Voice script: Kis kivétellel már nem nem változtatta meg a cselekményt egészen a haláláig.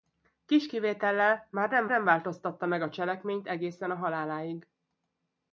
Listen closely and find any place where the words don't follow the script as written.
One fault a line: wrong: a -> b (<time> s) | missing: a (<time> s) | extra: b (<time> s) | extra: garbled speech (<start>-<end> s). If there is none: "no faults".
no faults